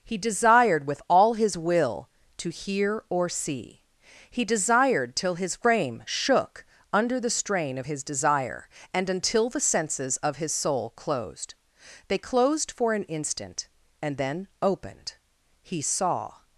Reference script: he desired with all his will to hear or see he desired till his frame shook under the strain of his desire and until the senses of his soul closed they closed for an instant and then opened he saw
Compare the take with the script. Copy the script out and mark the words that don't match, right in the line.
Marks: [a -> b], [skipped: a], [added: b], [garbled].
he desired with all his will to hear or see he desired till his frame shook under the strain of his desire and until the senses of his soul closed they closed for an instant and then opened he saw